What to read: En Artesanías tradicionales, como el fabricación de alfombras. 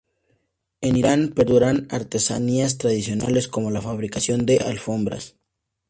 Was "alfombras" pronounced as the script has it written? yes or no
yes